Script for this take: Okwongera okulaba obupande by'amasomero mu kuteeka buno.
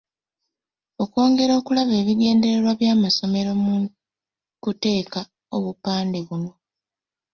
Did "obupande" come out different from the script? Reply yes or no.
yes